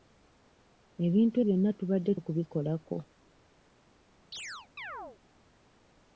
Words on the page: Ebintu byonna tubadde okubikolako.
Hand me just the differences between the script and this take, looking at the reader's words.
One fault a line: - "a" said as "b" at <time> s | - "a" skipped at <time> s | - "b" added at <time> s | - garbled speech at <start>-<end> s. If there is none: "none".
none